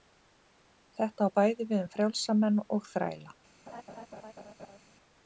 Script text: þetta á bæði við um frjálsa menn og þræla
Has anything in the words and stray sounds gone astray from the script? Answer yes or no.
yes